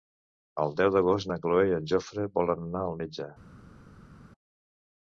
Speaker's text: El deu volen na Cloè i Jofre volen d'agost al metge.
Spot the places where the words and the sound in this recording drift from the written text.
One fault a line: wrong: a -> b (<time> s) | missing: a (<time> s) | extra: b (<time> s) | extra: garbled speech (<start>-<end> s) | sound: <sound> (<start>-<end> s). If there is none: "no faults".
wrong: volen -> d'agost (0.9 s)
extra: en (1.8 s)
wrong: d'agost -> anar (2.7 s)